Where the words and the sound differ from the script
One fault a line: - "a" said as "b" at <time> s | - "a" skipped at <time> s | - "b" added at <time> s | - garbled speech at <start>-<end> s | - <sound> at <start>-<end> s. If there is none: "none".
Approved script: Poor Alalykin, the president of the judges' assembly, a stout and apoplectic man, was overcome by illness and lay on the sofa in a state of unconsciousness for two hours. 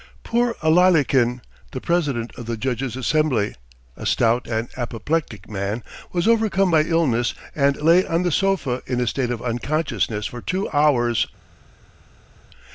none